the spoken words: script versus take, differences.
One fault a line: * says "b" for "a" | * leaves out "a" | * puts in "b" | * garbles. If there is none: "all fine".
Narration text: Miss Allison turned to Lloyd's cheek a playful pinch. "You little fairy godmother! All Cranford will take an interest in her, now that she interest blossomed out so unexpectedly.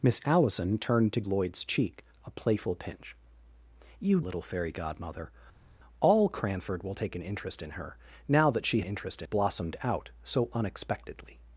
all fine